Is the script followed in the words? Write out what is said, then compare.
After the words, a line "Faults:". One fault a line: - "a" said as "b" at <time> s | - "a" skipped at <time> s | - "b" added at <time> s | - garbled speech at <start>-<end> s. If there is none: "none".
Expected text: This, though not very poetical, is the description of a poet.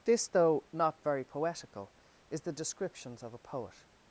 This, though not very poetical, is the descriptions of a poet.
Faults:
- "description" said as "descriptions" at 2.5 s